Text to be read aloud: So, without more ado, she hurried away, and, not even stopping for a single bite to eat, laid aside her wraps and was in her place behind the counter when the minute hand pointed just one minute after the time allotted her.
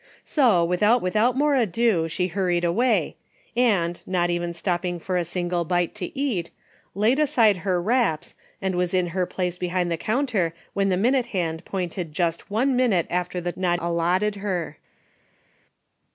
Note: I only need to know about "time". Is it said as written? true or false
false